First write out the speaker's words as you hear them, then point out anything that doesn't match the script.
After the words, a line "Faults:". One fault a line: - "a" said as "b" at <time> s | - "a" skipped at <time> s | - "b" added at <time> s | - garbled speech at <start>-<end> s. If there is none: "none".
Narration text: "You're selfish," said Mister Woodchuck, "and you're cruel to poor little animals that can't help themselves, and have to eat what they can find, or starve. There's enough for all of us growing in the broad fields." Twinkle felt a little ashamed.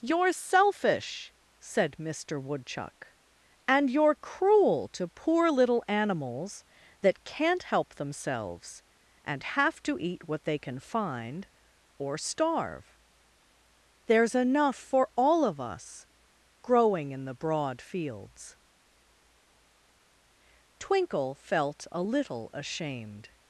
"You're selfish," said Mister Woodchuck, "and you're cruel to poor little animals that can't help themselves, and have to eat what they can find, or starve. There's enough for all of us growing in the broad fields." Twinkle felt a little ashamed.
Faults:
none